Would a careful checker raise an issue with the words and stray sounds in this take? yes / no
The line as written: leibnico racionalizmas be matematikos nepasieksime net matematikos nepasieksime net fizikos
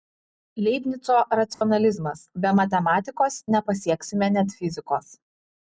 yes